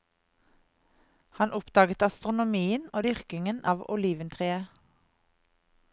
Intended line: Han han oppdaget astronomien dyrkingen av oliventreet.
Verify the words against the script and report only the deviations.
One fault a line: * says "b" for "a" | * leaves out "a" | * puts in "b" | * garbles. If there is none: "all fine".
* leaves out "han"
* puts in "og"